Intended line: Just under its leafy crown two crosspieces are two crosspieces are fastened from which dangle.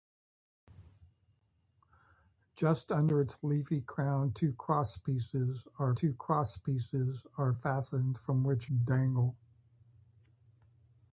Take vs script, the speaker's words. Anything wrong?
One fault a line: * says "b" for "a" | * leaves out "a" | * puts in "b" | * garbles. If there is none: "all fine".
all fine